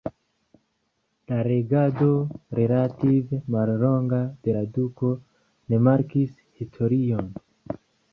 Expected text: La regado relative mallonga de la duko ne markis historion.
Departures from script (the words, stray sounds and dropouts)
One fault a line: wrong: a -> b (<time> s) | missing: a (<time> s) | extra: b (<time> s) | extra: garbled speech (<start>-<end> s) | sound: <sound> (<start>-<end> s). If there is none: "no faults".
no faults